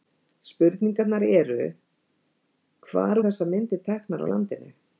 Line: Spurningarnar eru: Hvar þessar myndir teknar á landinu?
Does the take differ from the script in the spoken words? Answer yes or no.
no